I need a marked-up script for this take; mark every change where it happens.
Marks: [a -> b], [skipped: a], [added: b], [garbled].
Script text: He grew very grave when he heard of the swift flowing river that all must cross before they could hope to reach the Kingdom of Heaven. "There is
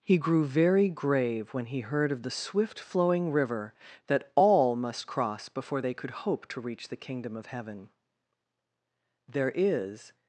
He grew very grave when he heard of the swift flowing river that all must cross before they could hope to reach the Kingdom of Heaven. "There is